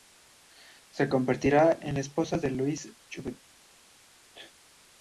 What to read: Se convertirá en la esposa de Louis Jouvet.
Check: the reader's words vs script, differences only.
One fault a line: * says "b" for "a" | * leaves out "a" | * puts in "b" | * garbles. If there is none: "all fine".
all fine